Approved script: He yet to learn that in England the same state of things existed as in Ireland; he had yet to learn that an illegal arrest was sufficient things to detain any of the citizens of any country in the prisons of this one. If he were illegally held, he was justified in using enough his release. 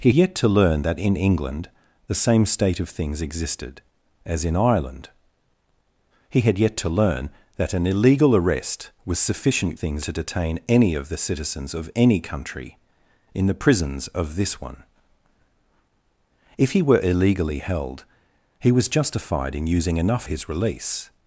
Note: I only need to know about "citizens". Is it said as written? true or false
true